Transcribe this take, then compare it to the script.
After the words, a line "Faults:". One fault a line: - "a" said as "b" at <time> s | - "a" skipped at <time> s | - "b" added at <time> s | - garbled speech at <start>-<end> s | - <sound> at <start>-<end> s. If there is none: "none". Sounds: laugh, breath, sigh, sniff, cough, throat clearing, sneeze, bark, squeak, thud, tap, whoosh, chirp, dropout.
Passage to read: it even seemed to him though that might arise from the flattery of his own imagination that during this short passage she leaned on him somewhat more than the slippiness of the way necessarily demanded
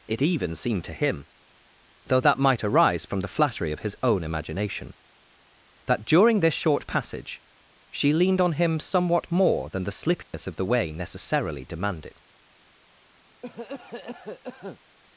it even seemed to him though that might arise from the flattery of his own imagination that during this short passage she leaned on him somewhat more than the slippiness of the way necessarily demanded
Faults:
- dropout at 10.2-10.3 s
- cough at 13.4-14.8 s